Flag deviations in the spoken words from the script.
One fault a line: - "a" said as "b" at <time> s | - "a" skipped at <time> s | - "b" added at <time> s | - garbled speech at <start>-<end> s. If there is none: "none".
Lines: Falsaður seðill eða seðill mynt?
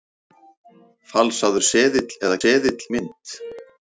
none